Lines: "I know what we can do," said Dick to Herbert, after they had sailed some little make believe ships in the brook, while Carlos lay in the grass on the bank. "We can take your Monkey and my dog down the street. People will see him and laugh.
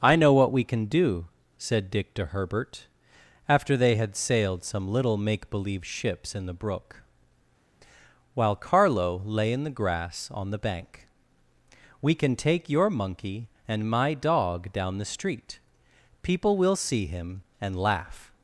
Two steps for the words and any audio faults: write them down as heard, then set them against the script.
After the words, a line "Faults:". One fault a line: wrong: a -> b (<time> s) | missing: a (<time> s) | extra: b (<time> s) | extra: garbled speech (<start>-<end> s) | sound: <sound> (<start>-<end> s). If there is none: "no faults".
"I know what we can do," said Dick to Herbert, after they had sailed some little make believe ships in the brook, while Carlo lay in the grass on the bank. "We can take your Monkey and my dog down the street. People will see him and laugh.
Faults:
wrong: Carlos -> Carlo (8.5 s)